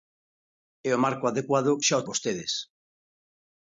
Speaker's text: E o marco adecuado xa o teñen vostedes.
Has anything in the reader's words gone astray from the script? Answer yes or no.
yes